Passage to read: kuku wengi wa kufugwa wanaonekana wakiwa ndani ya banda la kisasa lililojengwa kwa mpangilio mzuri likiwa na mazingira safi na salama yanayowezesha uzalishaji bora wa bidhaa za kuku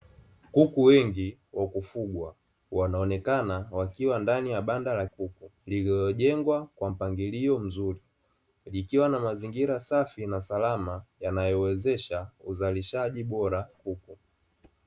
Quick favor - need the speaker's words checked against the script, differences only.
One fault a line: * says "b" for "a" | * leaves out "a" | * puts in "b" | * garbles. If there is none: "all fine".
* says "kuku" for "kisasa"
* leaves out "wa bidhaa za"